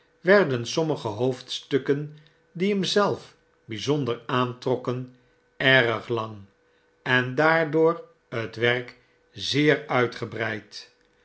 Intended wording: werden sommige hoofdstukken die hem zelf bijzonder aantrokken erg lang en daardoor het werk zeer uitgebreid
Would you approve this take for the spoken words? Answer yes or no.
yes